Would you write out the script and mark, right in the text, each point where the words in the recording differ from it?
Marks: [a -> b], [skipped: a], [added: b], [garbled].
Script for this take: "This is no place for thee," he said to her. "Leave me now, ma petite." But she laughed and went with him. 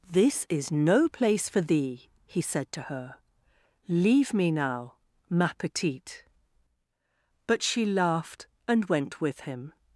"This is no place for thee," he said to her. "Leave me now, ma petite." But she laughed and went with him.